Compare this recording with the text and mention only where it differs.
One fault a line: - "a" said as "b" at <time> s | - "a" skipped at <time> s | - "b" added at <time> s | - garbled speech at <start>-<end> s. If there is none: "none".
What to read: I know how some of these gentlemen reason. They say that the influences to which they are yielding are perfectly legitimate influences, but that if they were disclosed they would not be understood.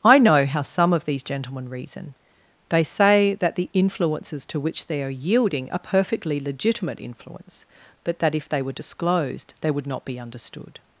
- "influences" said as "influence" at 7.0 s